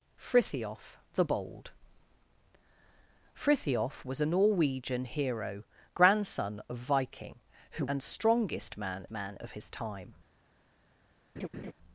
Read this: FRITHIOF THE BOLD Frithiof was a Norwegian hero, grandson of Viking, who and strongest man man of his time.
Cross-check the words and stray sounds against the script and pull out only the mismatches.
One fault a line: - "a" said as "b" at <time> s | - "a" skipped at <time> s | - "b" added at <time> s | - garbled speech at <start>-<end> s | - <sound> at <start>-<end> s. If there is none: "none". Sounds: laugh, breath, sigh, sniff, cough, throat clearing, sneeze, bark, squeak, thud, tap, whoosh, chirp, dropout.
- laugh at 11.4-11.7 s